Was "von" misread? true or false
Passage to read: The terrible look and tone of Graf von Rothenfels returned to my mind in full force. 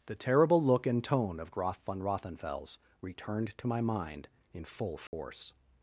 false